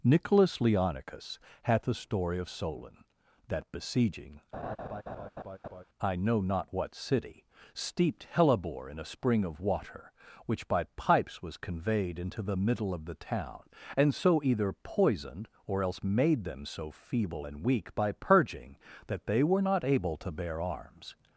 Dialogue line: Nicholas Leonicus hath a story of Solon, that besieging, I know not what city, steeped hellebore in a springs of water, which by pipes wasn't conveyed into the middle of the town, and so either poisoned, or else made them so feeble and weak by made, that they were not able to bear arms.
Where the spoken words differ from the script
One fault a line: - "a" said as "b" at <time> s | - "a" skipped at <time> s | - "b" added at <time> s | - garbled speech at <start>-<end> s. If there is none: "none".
- "springs" said as "spring" at 9.1 s
- "wasn't" said as "was" at 11.4 s
- "made" said as "purging" at 18.1 s